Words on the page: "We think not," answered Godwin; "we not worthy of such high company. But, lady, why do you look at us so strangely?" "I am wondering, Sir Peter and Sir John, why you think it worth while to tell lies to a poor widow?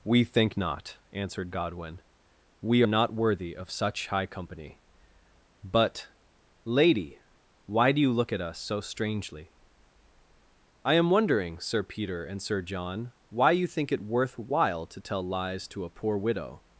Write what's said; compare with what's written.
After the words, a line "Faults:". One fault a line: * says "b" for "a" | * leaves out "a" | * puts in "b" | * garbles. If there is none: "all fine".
"We think not," answered Godwin; "we not worthy of such high company. But, lady, why do you look at us so strangely?" "I am wondering, Sir Peter and Sir John, why you think it worth while to tell lies to a poor widow?
Faults:
all fine